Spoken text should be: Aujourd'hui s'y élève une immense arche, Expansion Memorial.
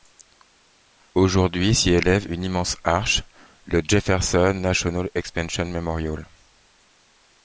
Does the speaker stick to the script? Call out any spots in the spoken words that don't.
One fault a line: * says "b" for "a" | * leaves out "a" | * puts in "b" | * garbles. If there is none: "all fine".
* puts in "le Jefferson National"